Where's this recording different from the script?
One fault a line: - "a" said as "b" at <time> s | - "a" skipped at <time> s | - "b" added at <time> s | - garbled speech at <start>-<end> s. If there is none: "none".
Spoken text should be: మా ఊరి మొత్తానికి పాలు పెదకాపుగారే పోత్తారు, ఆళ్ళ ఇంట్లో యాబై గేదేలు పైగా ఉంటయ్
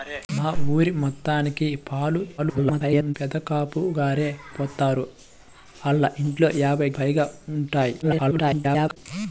- garbled speech at 2.4-3.2 s
- "గేదేలు" skipped at 6.9 s
- garbled speech at 8.0-9.0 s